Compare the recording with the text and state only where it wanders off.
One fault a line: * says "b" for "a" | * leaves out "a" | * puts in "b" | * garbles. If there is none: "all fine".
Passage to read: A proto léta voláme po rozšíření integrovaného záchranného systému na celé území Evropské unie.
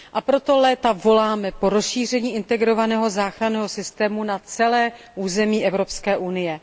all fine